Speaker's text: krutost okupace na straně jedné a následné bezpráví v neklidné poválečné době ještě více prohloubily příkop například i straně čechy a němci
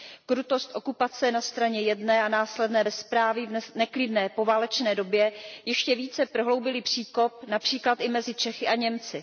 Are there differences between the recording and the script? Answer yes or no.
yes